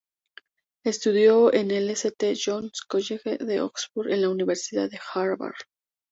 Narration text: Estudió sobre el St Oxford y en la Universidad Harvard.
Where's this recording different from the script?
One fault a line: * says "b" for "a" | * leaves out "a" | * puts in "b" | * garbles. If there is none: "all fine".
* says "en" for "sobre"
* puts in "John's College de"
* puts in "de"